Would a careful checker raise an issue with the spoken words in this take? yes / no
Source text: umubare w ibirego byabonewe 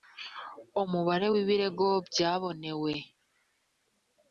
no